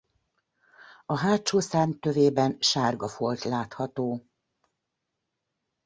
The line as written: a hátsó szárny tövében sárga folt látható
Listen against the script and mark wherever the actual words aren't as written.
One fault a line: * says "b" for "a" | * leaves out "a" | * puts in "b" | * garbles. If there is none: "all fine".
all fine